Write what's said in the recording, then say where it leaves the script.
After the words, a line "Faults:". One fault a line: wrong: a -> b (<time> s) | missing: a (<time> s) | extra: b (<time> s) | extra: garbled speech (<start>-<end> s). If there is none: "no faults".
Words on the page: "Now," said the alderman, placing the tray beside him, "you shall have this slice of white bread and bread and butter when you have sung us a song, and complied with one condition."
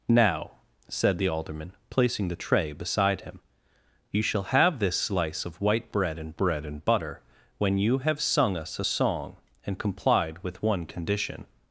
"Now," said the alderman, placing the tray beside him, "you shall have this slice of white bread and bread and butter when you have sung us a song, and complied with one condition."
Faults:
no faults